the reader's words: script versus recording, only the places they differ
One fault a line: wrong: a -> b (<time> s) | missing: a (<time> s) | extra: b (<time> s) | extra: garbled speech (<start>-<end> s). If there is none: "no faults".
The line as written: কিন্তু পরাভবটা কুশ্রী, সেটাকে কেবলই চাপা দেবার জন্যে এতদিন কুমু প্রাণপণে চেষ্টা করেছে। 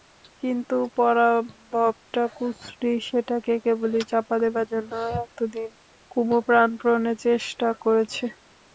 no faults